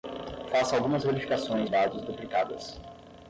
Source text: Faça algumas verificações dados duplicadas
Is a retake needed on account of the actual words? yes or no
no